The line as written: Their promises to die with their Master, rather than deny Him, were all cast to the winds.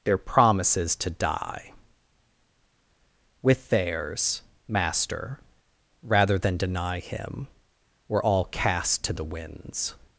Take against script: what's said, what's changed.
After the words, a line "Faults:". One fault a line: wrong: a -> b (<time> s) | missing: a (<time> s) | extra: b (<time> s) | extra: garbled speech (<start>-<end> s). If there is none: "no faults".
Their promises to die with theirs Master, rather than deny Him, were all cast to the winds.
Faults:
wrong: their -> theirs (3.7 s)